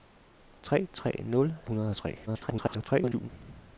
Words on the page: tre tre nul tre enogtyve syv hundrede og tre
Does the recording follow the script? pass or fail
fail